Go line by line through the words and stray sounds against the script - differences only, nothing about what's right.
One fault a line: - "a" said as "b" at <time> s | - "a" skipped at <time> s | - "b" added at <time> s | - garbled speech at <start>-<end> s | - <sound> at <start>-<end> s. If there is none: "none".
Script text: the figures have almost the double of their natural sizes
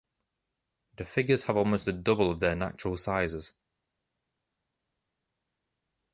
none